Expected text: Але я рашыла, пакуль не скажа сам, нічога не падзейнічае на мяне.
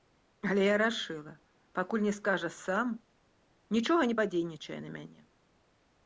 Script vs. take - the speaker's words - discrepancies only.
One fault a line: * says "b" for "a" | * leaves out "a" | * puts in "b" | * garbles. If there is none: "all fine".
all fine